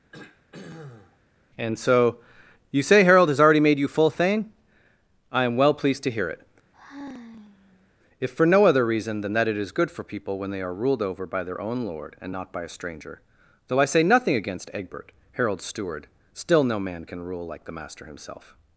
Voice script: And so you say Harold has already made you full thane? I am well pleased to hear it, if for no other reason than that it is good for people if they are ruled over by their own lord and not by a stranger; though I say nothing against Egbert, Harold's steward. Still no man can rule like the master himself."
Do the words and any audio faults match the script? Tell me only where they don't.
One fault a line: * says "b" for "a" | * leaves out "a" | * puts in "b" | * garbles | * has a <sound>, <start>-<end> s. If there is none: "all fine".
* has a throat clearing, 0.1-1.2 s
* has a sigh, 6.7-7.9 s
* says "when" for "if"